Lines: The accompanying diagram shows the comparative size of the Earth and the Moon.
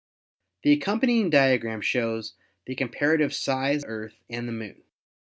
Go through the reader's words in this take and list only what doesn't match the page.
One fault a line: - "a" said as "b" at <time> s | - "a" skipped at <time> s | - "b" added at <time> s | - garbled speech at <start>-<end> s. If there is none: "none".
- "of the" skipped at 3.9 s